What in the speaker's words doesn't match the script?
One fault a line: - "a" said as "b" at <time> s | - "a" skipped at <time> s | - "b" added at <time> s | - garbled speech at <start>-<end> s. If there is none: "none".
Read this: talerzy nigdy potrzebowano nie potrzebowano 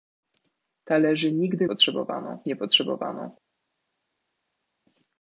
none